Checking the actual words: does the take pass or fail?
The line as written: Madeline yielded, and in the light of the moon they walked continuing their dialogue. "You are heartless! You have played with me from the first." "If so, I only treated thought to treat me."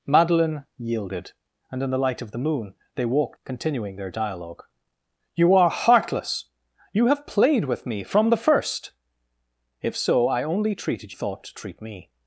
pass